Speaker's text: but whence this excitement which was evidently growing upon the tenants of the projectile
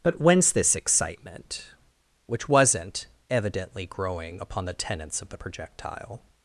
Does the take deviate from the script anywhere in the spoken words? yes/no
yes